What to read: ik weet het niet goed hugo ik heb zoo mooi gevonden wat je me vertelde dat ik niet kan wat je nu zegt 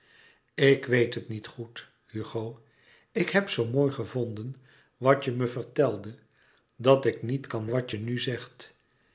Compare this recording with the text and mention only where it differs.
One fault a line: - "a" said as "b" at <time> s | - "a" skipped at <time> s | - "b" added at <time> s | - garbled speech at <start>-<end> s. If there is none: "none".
none